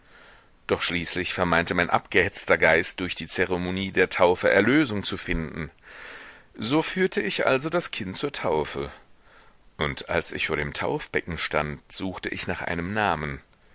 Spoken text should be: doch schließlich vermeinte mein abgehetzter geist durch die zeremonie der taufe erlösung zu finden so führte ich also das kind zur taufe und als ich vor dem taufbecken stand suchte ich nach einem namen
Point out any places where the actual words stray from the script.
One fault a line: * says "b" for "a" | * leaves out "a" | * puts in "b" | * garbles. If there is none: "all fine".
all fine